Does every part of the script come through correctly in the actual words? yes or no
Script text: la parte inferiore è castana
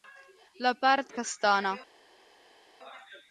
no